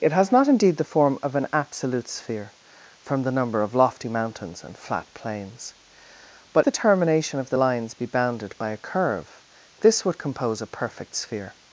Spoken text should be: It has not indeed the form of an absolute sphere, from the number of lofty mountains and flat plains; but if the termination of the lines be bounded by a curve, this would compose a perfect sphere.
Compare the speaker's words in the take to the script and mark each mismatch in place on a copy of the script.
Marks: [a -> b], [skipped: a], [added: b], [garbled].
It has not indeed the form of an absolute sphere, from the number of lofty mountains and flat plains; but [skipped: if] the termination of the lines be bounded by a curve, this would compose a perfect sphere.